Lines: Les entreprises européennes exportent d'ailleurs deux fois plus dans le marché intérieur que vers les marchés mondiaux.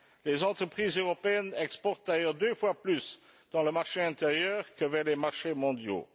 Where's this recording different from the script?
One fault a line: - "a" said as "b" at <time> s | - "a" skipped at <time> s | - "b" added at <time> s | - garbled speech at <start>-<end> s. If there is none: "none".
none